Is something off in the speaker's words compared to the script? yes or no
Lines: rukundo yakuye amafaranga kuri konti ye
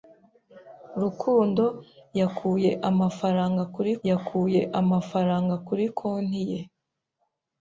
yes